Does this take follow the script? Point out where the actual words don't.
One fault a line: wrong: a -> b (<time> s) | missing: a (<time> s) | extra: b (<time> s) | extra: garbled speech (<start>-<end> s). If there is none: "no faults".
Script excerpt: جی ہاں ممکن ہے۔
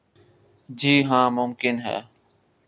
no faults